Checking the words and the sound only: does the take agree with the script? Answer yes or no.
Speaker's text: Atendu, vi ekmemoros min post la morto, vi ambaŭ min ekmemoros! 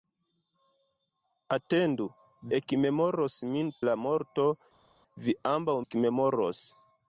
no